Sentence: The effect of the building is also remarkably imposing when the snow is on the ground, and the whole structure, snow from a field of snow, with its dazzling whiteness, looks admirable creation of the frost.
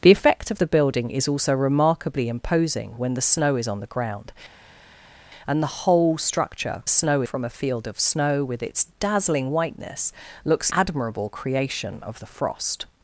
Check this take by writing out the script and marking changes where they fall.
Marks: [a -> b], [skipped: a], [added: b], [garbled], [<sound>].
The effect of the building is also remarkably imposing when the snow is on the ground, and the whole structure, snow from a field of snow, with its dazzling whiteness, looks admirable creation of the frost.